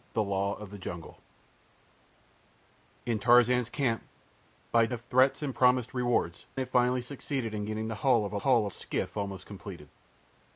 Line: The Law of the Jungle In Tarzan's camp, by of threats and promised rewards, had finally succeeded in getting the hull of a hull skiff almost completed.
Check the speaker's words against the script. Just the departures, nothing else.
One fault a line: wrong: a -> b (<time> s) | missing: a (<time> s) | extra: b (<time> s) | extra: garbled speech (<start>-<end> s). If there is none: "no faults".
no faults